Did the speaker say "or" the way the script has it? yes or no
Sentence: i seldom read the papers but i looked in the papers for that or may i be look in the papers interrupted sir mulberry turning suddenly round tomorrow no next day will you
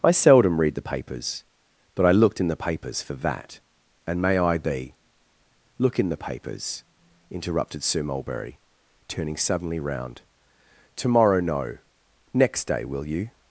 no